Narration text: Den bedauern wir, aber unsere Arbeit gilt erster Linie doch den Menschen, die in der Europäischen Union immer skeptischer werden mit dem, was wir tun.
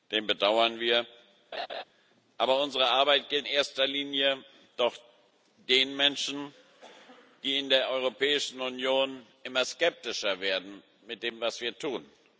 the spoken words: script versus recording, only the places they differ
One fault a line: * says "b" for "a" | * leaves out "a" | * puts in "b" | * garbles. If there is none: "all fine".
all fine